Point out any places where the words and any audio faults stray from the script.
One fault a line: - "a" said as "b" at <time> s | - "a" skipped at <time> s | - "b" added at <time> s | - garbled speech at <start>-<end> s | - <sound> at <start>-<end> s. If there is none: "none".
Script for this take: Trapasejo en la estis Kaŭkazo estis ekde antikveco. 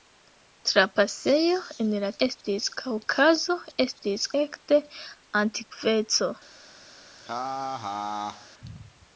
- laugh at 7.2-8.5 s